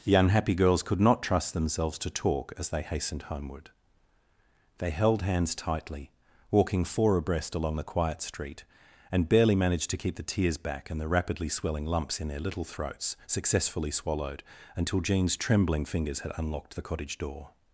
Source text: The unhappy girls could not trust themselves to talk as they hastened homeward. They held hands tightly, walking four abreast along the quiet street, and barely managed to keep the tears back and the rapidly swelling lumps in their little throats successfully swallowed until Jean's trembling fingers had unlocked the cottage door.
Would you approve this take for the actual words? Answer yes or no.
yes